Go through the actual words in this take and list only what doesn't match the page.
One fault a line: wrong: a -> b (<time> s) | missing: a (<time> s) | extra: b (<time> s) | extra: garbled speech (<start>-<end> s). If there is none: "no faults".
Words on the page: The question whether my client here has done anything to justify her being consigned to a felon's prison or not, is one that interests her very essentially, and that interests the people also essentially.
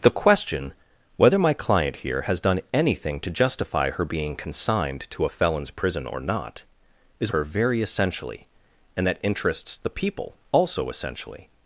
missing: one that interests (7.3 s)